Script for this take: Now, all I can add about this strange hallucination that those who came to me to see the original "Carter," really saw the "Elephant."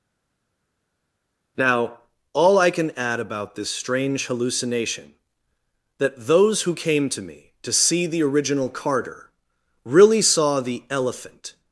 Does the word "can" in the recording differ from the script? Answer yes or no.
no